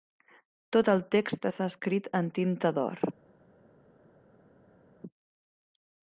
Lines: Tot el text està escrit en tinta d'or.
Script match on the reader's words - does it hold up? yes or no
yes